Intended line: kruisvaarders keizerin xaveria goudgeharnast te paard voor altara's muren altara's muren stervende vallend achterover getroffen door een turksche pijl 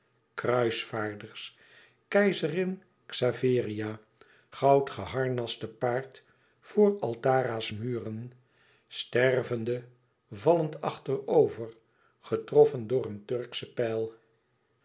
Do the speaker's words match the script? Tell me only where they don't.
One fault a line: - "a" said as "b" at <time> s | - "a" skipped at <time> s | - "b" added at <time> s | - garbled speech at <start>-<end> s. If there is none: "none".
- "altara's muren" skipped at 8.3 s